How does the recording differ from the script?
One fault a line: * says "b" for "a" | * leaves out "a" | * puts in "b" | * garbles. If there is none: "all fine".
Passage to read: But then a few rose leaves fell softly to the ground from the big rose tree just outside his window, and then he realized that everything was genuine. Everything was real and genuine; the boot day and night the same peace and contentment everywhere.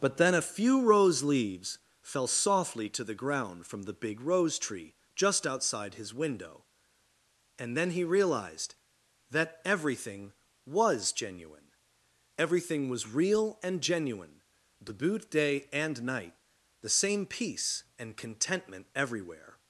all fine